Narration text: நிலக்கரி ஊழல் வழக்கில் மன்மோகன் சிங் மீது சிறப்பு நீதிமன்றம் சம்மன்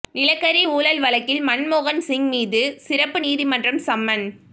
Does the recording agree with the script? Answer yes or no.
yes